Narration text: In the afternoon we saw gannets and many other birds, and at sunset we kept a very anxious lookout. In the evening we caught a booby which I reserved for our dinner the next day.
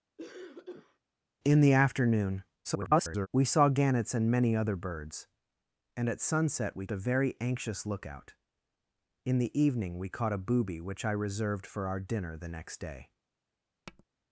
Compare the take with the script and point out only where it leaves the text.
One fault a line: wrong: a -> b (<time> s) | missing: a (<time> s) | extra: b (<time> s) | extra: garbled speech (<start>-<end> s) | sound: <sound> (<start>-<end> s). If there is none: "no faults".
sound: cough (0.2-1.0 s)
extra: garbled speech (2.6-3.3 s)
missing: kept (6.9 s)
sound: tap (13.9-14.0 s)